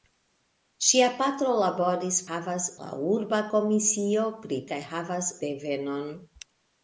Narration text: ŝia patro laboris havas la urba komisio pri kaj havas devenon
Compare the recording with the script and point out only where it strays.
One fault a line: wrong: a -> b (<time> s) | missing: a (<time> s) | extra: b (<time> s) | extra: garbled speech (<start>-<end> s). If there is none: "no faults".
no faults